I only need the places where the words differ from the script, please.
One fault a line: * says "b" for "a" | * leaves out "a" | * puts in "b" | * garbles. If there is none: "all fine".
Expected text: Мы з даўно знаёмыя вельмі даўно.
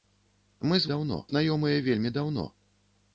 all fine